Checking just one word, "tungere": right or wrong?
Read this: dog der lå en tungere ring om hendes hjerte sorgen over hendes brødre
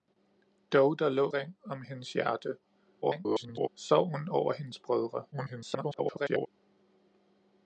wrong